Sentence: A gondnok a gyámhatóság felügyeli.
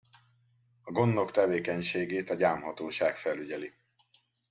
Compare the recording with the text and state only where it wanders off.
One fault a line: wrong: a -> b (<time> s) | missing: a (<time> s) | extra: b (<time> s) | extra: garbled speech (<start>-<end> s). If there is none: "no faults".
extra: tevékenységét (1.3 s)